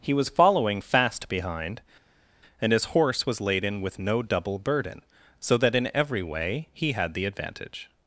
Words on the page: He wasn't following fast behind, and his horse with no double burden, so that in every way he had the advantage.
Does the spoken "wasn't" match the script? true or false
false